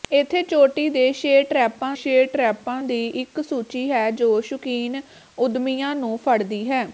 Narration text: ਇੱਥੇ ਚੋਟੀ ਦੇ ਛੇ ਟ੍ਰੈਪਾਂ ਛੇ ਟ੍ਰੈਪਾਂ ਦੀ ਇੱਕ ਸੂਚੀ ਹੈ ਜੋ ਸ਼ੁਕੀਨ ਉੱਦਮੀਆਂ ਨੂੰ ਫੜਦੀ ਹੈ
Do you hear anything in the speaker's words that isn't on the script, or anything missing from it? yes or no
no